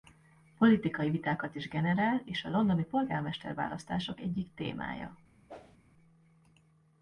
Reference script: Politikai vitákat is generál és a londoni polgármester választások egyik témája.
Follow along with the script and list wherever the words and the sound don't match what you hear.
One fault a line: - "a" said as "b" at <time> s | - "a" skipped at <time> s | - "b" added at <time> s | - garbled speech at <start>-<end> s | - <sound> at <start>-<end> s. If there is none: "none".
- whoosh at 5.5-5.8 s